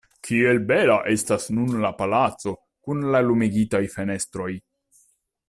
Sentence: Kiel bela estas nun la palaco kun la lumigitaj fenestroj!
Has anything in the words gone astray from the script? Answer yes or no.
no